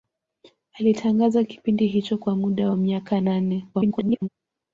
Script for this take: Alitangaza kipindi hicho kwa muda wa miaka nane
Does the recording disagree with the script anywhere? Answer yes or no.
yes